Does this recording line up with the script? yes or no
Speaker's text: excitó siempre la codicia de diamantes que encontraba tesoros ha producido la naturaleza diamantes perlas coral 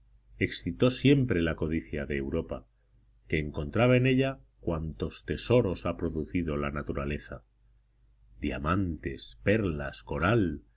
no